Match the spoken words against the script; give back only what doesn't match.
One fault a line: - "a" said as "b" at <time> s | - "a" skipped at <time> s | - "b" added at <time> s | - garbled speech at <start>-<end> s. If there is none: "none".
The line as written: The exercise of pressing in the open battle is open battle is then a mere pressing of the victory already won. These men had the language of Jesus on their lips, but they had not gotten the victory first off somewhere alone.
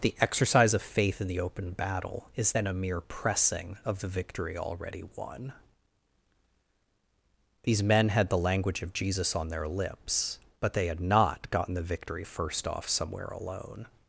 - "pressing" said as "faith" at 0.8 s
- "open battle is" skipped at 2.5 s